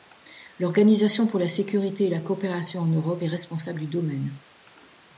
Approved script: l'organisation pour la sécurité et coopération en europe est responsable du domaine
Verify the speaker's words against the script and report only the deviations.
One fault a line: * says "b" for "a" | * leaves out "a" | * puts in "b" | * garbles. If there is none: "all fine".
* puts in "la"